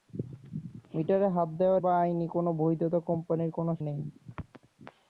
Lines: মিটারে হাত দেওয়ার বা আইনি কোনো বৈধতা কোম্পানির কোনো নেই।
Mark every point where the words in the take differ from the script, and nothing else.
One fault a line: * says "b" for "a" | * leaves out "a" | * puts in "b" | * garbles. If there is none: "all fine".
all fine